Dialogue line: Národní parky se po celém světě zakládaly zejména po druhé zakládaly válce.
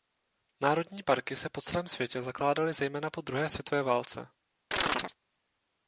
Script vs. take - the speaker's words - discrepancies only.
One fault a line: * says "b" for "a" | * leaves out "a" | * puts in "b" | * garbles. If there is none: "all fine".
* says "světové" for "zakládaly"